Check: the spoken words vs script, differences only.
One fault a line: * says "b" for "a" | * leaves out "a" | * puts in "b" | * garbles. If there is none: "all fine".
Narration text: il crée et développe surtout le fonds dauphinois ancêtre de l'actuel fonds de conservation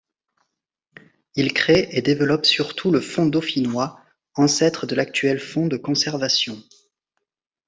all fine